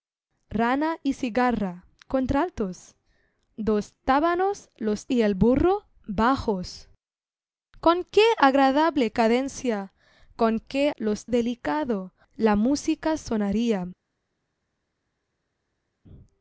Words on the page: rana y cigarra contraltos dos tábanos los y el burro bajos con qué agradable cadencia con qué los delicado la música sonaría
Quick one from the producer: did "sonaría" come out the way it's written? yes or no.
yes